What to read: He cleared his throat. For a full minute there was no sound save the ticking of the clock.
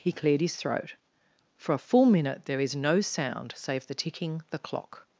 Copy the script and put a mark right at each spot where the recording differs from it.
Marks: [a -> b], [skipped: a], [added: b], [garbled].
He cleared his throat. For a full minute there [was -> is] no sound save the ticking [skipped: of] the clock.